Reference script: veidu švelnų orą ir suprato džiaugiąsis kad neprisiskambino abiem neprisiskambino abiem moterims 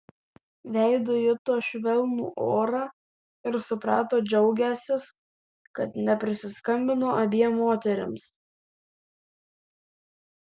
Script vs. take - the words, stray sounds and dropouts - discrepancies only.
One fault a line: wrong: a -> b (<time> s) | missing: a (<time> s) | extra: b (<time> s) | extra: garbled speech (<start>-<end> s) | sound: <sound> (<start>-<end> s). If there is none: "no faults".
extra: juto (1.2 s)
missing: neprisiskambino abiem (7.6 s)